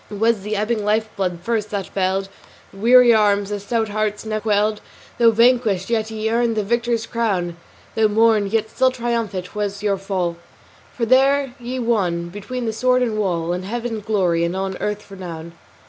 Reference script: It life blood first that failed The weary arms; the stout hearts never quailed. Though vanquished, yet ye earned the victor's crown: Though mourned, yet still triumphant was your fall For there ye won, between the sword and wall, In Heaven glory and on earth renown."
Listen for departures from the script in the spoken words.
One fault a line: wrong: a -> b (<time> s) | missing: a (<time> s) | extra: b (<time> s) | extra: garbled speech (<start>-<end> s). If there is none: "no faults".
extra: was the ebbing (0.2 s)